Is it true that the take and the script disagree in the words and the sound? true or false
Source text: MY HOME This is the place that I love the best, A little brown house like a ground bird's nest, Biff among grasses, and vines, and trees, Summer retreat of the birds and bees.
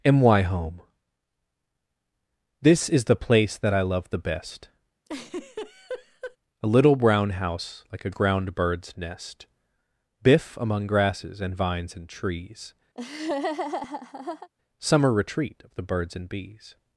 true